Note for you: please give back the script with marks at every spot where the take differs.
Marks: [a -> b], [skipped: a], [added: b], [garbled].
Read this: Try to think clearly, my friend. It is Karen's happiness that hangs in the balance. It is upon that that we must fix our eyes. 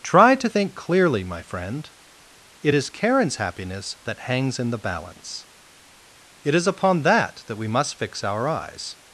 Try to think clearly, my friend. It is Karen's happiness that hangs in the balance. It is upon that that we must fix our eyes.